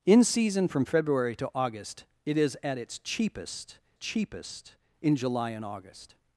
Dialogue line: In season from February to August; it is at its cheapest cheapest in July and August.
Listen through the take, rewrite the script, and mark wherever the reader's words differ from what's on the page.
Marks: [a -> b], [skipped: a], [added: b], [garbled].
In season from February to August; it is at its cheapest cheapest in July and August.